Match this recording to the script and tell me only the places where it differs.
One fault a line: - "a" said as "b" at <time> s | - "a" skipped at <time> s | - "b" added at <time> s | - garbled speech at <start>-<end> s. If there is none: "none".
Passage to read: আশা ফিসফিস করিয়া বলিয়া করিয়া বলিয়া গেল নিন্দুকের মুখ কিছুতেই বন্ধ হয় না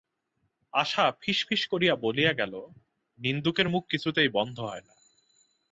- "করিয়া বলিয়া" skipped at 2.3 s